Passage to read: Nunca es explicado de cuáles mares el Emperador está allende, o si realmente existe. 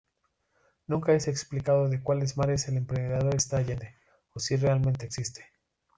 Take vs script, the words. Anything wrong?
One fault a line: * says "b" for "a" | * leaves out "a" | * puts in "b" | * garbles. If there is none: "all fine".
all fine